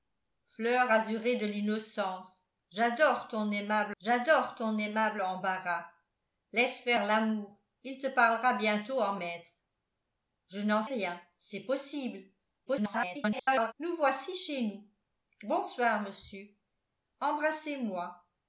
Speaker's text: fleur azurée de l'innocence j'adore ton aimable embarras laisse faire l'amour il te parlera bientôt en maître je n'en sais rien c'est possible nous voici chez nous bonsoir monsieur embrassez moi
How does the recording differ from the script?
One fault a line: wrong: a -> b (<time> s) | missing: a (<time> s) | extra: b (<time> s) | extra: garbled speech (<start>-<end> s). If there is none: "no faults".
extra: j'adore ton aimable (4.0 s)
missing: sais (10.8 s)
extra: garbled speech (12.7-13.7 s)